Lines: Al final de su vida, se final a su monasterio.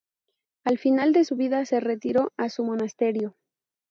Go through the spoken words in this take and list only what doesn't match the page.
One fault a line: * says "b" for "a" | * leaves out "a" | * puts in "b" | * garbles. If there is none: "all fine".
* says "retiró" for "final"